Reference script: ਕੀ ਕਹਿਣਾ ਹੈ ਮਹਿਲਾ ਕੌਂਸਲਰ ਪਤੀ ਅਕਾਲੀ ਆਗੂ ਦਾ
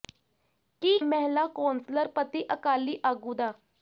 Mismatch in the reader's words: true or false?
true